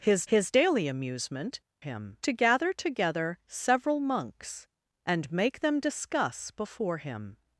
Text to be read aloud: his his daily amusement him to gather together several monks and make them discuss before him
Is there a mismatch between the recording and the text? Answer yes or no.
no